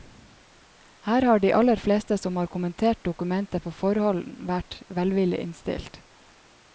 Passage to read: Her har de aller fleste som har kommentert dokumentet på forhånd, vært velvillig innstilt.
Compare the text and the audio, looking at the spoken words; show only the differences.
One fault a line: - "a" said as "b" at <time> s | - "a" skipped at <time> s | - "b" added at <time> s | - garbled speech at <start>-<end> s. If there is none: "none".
none